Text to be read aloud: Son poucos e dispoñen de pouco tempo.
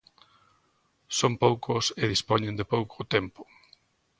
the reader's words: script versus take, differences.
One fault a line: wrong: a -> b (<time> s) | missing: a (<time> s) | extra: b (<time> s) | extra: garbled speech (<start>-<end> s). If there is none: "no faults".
no faults